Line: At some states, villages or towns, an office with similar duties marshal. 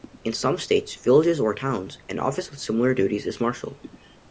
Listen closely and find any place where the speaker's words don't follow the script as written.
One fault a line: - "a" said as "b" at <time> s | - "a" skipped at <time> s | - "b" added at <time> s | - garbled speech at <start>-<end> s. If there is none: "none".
- "At" said as "In" at 0.2 s
- "is" added at 3.3 s